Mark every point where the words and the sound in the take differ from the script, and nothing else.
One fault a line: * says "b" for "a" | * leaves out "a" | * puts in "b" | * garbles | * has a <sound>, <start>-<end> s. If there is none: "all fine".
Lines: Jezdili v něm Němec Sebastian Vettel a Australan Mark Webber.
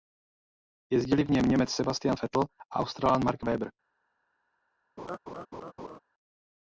* has a laugh, 5.0-6.0 s